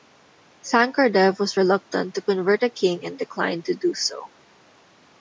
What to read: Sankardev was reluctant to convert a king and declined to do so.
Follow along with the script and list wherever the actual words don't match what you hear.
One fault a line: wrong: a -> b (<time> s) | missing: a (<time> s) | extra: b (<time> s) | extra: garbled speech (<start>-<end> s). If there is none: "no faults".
no faults